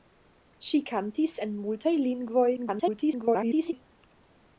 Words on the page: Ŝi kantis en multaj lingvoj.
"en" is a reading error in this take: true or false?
false